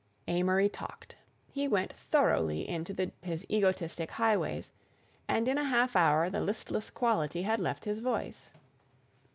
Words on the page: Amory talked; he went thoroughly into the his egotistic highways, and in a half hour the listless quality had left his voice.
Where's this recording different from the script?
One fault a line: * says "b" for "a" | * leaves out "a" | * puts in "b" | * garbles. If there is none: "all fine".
all fine